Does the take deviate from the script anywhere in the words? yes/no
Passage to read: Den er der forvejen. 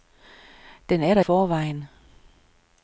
no